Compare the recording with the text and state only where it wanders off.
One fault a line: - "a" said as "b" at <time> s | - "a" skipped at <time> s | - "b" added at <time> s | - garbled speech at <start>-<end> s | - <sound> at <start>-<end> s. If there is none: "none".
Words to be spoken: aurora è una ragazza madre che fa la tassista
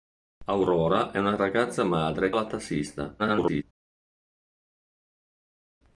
- "che fa" skipped at 2.3 s
- garbled speech at 3.2-3.6 s